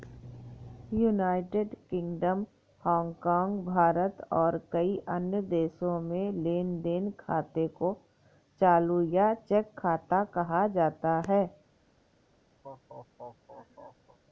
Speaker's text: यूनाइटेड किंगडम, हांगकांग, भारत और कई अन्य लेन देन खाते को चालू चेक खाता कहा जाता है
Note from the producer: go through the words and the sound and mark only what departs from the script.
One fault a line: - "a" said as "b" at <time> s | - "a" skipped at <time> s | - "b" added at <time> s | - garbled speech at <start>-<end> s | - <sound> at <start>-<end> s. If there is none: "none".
- "देशों में" added at 5.4 s
- "या" added at 9.0 s
- laugh at 12.6-14.2 s